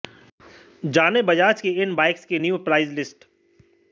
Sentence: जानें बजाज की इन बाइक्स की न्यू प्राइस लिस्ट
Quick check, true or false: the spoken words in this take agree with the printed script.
true